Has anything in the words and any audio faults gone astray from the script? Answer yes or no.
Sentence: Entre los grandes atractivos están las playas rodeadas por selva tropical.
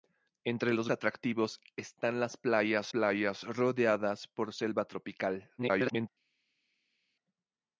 yes